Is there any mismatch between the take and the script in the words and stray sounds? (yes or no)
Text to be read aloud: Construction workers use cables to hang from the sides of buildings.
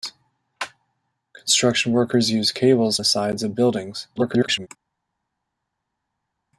yes